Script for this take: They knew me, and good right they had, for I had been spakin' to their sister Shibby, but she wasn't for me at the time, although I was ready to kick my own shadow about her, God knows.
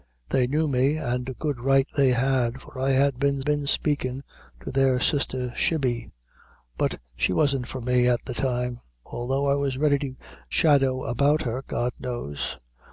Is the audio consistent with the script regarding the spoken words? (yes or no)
no